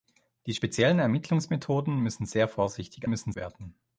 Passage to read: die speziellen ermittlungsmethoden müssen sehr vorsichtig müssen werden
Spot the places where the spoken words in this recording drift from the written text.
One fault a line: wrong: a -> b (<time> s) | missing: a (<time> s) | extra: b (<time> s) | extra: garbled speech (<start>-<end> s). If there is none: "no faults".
no faults